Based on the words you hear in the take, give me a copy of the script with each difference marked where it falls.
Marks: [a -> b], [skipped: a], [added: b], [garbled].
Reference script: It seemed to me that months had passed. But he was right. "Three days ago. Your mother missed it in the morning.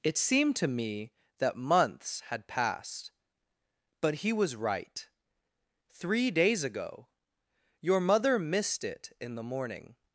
It seemed to me that months had passed. But he was right. "Three days ago. Your mother missed it in the morning.